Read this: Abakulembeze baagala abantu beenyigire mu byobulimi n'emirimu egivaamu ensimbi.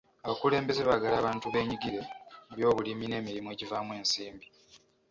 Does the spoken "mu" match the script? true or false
true